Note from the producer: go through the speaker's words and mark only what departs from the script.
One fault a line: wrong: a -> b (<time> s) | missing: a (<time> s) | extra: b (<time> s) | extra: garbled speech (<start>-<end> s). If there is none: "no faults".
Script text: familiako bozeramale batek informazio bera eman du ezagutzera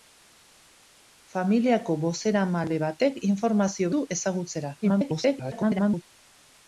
missing: bera eman (3.9 s)
extra: garbled speech (4.8-6.0 s)